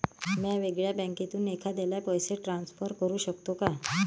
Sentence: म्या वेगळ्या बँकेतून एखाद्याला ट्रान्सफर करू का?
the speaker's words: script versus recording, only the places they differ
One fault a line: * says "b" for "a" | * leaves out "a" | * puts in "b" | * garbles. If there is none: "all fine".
* puts in "पैसे"
* puts in "शकतो"